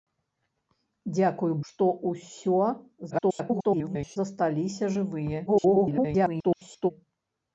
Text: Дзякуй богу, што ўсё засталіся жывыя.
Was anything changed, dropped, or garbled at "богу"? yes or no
yes